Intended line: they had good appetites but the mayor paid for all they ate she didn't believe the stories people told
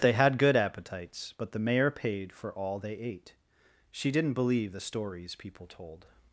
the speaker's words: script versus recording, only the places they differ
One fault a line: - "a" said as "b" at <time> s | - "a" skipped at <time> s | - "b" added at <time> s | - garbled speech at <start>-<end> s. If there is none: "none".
none